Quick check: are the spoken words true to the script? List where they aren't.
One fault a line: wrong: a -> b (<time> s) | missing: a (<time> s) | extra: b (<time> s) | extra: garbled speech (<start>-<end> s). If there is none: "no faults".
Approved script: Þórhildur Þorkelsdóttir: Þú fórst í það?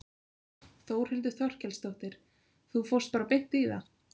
extra: bara beint (3.2 s)